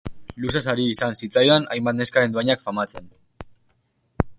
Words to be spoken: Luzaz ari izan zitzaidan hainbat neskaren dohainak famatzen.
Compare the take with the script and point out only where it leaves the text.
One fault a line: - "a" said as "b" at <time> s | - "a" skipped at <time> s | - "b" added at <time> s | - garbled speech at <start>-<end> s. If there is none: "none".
none